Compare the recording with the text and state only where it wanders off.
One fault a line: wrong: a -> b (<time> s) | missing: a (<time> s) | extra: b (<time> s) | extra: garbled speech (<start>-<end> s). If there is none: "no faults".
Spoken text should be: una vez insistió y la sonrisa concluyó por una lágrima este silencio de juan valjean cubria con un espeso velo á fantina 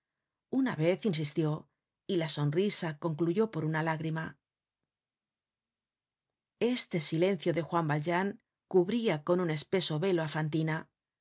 no faults